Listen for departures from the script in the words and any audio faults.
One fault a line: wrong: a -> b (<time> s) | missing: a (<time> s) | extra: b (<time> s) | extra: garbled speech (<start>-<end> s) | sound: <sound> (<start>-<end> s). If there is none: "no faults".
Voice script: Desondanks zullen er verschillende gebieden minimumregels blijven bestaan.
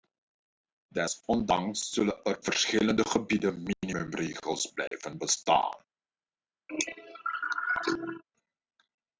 sound: dropout (4.9-4.9 s)
sound: cough (6.7-8.2 s)